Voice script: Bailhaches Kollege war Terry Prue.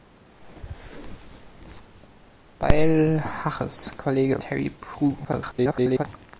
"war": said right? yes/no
no